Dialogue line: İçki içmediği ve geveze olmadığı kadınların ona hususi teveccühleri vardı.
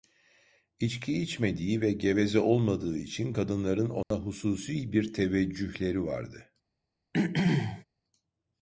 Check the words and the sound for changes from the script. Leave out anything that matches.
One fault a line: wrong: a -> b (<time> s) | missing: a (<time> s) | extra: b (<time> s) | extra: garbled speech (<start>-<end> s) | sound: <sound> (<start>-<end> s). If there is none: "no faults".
extra: için (3.0 s)
sound: dropout (4.0-4.1 s)
extra: bir (4.9 s)
sound: throat clearing (7.1-7.8 s)